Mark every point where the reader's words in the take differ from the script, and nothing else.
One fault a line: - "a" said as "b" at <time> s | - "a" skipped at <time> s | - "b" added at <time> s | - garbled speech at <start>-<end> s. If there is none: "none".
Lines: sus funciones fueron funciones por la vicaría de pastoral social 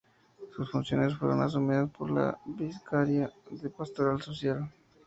- "funciones" said as "asumidas" at 1.4 s